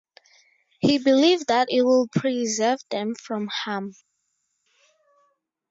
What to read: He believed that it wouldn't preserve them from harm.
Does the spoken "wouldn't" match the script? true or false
false